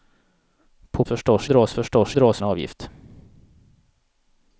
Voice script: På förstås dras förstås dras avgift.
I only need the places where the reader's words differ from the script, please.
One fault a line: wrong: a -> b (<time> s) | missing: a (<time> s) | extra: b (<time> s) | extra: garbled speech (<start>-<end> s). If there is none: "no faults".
no faults